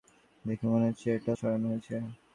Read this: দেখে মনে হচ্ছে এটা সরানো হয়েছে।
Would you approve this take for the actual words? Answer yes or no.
yes